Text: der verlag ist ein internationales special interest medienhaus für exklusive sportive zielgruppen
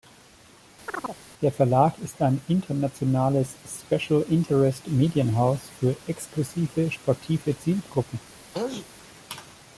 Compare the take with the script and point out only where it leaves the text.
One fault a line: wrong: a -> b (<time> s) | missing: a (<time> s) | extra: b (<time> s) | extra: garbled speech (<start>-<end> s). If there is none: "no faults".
no faults